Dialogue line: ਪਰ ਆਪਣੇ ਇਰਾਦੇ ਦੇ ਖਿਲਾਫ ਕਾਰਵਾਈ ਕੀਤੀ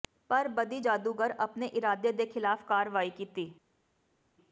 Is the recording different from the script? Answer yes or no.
yes